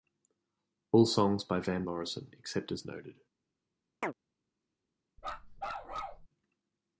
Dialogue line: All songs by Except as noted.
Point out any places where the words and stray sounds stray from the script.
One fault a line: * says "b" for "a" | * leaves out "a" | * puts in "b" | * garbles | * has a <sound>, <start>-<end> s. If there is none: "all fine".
* puts in "Van Morrison"
* has a chirp, 4.0-4.1 s
* has a bark, 5.2-6.3 s